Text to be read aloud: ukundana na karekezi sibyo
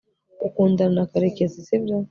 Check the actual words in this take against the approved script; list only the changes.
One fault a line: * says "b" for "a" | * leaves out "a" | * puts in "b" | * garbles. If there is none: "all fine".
all fine